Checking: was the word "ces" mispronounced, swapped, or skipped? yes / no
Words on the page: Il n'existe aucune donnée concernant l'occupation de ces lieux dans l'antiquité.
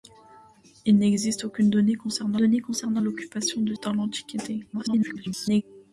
yes